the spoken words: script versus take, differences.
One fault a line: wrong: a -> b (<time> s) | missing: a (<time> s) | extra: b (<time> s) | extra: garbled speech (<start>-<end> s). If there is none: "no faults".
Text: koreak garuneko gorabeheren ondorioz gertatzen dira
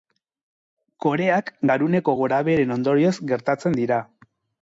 no faults